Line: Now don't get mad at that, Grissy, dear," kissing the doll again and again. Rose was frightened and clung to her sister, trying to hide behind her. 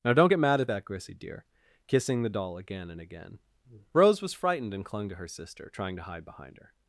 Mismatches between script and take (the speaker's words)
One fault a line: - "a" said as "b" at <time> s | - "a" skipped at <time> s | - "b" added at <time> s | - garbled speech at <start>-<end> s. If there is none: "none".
none